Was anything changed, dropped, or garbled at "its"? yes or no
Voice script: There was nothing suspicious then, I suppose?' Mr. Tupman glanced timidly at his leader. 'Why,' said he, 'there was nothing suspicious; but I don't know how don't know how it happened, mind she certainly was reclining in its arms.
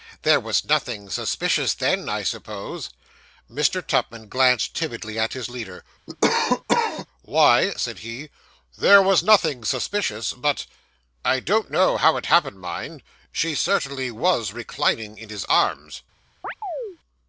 yes